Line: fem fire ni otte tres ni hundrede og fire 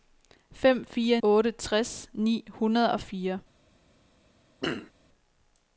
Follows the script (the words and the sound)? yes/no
no